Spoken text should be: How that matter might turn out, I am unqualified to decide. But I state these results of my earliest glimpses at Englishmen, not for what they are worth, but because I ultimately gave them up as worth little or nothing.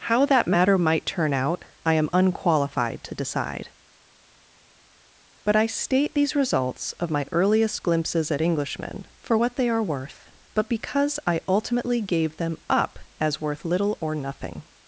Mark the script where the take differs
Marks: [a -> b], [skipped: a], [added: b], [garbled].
How that matter might turn out, I am unqualified to decide. But I state these results of my earliest glimpses at Englishmen, [skipped: not] for what they are worth, but because I ultimately gave them up as worth little or nothing.